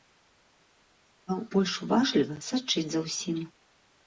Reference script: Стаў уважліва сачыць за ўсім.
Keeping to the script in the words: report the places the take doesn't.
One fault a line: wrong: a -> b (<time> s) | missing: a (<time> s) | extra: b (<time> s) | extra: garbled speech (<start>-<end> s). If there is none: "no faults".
extra: больш (1.6 s)